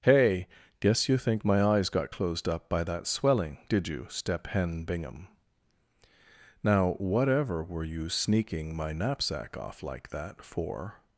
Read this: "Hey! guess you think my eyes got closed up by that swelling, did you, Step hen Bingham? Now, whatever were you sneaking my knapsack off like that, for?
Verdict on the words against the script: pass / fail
pass